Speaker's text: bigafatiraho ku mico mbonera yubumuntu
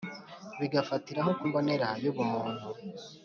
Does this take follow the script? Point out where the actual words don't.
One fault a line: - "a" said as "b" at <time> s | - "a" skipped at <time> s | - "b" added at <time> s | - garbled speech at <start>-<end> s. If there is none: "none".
- "mico" skipped at 1.4 s